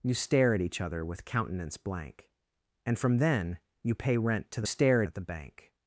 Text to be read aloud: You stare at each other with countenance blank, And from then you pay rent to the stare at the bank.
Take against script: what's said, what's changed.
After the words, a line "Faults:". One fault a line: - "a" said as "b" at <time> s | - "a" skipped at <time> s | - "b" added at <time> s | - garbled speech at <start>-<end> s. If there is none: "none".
You stare at each other with countenance blank, And from then you pay rent to the stare at the bank.
Faults:
none